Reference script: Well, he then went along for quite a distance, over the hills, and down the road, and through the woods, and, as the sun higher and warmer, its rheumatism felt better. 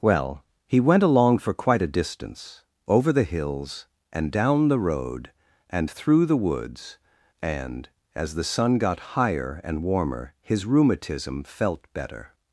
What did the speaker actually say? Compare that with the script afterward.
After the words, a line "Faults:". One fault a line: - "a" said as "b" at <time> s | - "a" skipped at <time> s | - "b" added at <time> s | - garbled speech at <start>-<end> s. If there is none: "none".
Well, he went along for quite a distance, over the hills, and down the road, and through the woods, and, as the sun got higher and warmer, his rheumatism felt better.
Faults:
- "then" skipped at 0.8 s
- "got" added at 8.8 s
- "its" said as "his" at 10.4 s